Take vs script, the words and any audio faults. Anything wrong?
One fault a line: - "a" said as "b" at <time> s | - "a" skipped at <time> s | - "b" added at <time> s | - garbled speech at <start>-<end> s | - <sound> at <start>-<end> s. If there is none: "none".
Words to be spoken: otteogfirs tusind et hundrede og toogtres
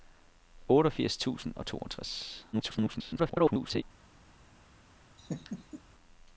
- "et hundrede" skipped at 1.5 s
- garbled speech at 2.5-3.8 s
- laugh at 5.2-5.8 s